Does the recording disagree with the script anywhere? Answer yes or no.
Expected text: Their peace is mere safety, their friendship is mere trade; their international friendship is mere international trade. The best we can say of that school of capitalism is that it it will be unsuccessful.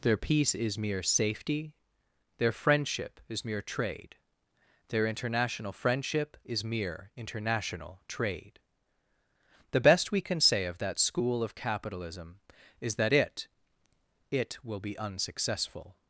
no